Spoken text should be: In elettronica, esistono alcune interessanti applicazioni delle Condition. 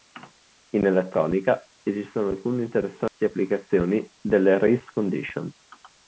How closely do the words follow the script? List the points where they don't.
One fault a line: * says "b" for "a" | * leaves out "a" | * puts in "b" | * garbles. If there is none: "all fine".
* puts in "Race"